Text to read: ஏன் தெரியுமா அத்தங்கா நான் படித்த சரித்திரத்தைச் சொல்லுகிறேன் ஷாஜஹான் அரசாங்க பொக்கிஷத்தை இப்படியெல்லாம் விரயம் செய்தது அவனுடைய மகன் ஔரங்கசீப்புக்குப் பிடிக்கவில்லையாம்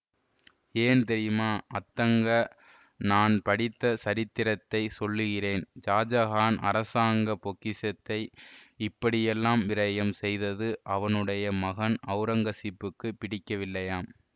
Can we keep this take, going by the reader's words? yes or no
yes